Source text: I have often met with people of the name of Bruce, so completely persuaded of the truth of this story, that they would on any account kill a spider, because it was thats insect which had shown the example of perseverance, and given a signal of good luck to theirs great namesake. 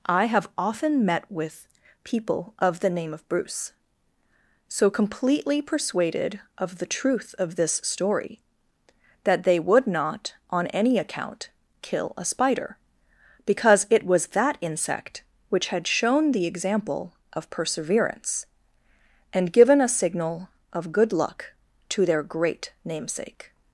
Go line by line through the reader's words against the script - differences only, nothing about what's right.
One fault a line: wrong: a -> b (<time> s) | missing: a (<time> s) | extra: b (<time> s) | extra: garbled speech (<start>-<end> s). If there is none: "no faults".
extra: not (9.8 s)
wrong: thats -> that (14.3 s)
wrong: theirs -> their (22.1 s)